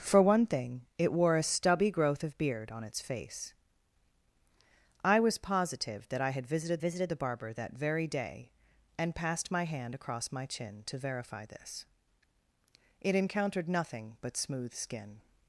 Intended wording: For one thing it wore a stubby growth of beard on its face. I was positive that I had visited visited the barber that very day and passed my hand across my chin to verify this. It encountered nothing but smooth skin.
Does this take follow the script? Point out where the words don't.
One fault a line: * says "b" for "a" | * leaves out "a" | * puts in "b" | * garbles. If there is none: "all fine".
all fine